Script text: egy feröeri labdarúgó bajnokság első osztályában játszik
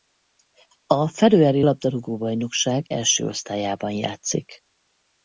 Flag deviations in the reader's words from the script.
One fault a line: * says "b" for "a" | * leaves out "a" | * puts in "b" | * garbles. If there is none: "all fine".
* says "a" for "egy"